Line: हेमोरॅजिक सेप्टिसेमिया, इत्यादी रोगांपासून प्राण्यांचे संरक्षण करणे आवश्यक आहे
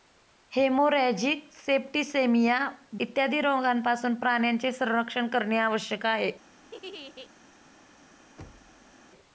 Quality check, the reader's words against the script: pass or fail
pass